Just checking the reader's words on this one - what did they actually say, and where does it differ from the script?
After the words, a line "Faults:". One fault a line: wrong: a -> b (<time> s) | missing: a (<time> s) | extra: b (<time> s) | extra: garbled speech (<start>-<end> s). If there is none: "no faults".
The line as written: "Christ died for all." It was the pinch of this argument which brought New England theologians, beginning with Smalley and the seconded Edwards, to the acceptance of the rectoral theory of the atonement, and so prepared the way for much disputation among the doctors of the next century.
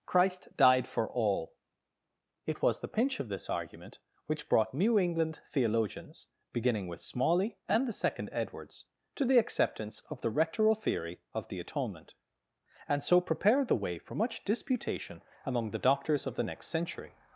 "Christ died for all." It was the pinch of this argument which brought New England theologians, beginning with Smalley and the second Edwards, to the acceptance of the rectoral theory of the atonement, and so prepared the way for much disputation among the doctors of the next century.
Faults:
wrong: seconded -> second (7.9 s)